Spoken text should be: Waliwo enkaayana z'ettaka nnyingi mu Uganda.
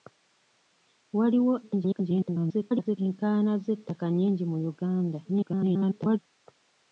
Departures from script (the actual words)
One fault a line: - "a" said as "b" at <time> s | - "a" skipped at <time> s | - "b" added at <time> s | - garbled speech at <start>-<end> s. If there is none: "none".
- garbled speech at 1.6-3.0 s
- garbled speech at 5.2-6.2 s